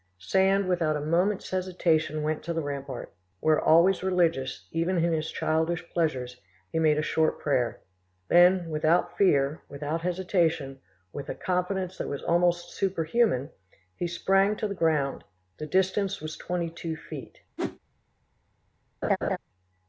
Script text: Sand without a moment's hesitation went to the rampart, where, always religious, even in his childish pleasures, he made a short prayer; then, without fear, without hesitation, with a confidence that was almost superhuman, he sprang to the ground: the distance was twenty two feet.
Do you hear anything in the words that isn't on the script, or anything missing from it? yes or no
no